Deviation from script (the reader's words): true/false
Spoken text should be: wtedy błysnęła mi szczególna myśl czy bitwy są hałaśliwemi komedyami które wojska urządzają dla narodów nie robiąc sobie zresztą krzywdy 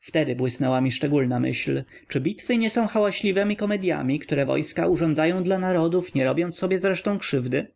true